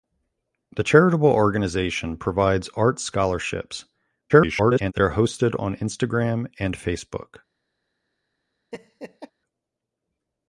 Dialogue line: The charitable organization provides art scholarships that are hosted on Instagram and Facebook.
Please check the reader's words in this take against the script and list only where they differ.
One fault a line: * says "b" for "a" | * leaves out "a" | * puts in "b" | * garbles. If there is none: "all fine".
* garbles